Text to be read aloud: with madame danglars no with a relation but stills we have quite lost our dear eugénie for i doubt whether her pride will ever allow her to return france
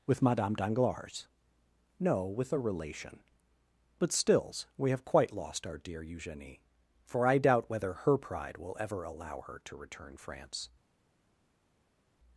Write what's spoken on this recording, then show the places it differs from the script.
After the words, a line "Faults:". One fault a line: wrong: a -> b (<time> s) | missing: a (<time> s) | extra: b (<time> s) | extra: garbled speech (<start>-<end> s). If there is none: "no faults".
with madame danglars no with a relation but stills we have quite lost our dear eugénie for i doubt whether her pride will ever allow her to return france
Faults:
no faults